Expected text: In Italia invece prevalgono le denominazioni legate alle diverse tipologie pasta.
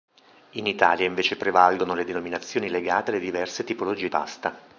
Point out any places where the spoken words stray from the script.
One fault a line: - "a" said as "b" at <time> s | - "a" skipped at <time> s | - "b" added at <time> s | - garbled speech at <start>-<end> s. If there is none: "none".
none